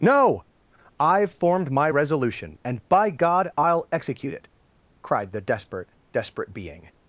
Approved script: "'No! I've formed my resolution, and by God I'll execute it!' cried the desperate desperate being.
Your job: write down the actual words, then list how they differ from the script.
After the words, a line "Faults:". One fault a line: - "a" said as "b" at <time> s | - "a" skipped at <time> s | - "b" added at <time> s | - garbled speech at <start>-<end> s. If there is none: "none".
"'No! I've formed my resolution, and by God I'll execute it!' cried the desperate desperate being.
Faults:
none